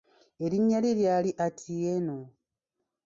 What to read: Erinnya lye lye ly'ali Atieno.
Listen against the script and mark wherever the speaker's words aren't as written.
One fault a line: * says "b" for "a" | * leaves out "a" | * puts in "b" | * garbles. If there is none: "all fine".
* leaves out "lye"